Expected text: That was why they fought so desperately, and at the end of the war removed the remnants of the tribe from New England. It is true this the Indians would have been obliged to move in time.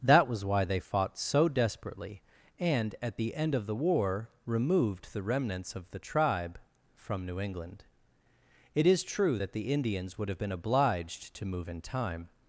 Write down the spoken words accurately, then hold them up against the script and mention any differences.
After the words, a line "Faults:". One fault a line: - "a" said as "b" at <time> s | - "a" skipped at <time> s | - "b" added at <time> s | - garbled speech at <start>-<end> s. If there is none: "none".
That was why they fought so desperately, and at the end of the war removed the remnants of the tribe from New England. It is true that the Indians would have been obliged to move in time.
Faults:
- "this" said as "that" at 9.4 s